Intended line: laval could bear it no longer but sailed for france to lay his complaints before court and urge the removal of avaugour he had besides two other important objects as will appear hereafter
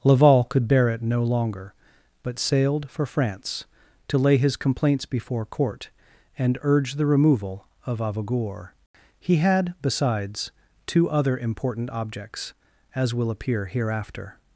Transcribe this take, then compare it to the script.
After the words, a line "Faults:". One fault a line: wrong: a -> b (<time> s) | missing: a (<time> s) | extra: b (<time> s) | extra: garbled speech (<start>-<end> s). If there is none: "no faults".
laval could bear it no longer but sailed for france to lay his complaints before court and urge the removal of avaugour he had besides two other important objects as will appear hereafter
Faults:
no faults